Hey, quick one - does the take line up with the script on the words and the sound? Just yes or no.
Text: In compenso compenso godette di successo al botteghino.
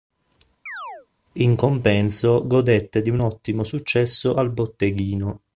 no